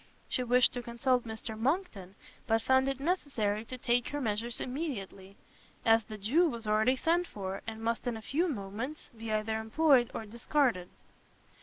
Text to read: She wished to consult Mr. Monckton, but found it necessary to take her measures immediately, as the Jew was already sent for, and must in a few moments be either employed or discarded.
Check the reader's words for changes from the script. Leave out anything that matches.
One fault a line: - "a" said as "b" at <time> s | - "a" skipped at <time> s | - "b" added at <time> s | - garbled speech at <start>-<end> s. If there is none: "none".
none